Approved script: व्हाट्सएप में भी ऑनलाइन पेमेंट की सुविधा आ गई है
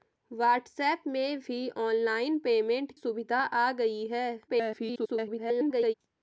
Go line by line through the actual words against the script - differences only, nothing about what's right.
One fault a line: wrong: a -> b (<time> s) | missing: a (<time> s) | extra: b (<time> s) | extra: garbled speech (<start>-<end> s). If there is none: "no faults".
missing: की (2.9 s)
extra: garbled speech (4.5-5.9 s)